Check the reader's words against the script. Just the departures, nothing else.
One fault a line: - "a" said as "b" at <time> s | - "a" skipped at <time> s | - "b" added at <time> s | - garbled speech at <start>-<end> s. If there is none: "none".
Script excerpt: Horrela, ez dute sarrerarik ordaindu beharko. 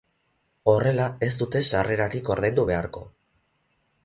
none